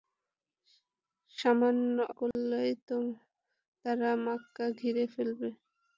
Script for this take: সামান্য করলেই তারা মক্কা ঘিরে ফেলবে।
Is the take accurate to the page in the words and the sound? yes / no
no